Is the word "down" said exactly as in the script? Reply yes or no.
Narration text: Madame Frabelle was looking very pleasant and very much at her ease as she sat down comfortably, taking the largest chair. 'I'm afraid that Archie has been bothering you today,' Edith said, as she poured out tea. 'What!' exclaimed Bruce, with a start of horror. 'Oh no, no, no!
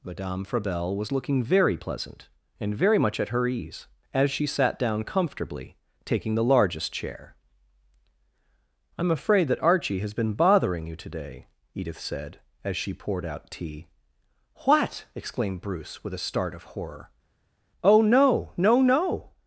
yes